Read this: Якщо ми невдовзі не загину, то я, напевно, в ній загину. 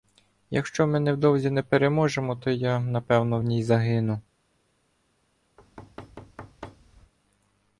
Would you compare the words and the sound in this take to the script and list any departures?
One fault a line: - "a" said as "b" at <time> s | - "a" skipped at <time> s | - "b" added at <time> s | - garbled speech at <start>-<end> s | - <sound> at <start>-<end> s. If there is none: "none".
- "загину" said as "переможемо" at 1.6 s
- thud at 5.6-7.1 s